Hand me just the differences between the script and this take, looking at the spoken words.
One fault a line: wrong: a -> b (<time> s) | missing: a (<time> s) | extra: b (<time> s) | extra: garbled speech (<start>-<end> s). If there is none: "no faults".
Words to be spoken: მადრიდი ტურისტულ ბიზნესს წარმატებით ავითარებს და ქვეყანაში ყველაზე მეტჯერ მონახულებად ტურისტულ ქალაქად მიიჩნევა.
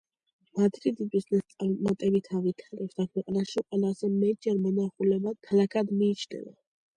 missing: ტურისტულ (1.1 s)
missing: ტურისტულ (5.4 s)